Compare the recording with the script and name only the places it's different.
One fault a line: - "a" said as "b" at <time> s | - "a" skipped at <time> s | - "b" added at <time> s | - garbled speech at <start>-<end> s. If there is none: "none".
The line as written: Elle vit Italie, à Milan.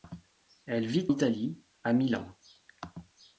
none